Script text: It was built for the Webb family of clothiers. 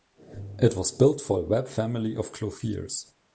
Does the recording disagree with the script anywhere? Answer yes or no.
no